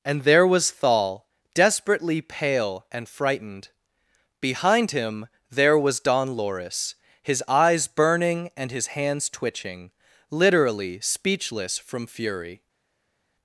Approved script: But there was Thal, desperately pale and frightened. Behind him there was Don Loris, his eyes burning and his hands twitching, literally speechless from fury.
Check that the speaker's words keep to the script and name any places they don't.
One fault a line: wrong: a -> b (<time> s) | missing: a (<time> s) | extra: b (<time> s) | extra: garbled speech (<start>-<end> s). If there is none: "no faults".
wrong: But -> And (0.0 s)